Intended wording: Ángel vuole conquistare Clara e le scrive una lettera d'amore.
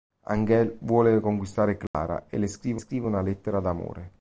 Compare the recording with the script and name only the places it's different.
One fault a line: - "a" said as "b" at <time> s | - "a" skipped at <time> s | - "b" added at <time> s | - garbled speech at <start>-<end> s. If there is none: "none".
- "scrive" added at 2.7 s